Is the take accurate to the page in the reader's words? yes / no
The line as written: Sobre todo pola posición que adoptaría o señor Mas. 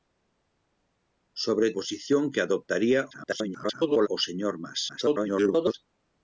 no